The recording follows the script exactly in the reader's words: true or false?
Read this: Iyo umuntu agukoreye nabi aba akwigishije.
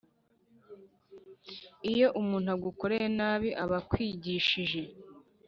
true